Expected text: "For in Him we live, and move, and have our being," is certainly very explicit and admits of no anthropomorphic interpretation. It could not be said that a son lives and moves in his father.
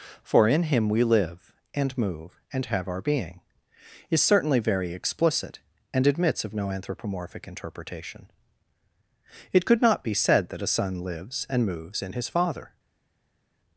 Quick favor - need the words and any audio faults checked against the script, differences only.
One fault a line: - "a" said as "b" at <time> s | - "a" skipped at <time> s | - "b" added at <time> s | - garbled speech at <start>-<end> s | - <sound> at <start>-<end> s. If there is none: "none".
none